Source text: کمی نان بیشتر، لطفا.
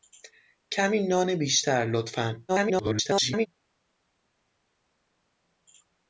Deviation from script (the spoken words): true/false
true